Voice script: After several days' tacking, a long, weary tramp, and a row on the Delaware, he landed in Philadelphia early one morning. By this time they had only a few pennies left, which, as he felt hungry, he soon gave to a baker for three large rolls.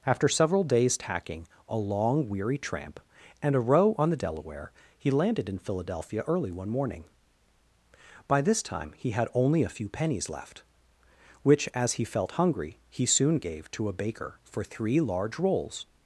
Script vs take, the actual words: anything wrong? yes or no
yes